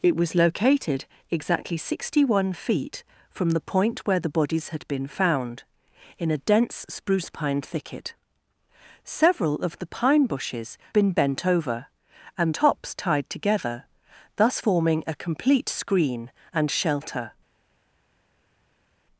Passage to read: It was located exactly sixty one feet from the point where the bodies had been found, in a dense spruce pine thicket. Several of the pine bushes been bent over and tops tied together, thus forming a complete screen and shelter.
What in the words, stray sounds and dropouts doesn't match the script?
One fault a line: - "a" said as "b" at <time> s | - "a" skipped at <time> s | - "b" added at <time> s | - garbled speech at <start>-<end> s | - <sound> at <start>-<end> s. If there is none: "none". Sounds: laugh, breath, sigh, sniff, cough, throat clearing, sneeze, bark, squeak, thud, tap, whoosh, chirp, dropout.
none